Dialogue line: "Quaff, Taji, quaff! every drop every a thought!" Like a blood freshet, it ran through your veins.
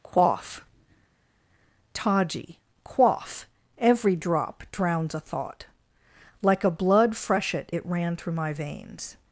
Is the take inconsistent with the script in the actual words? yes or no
yes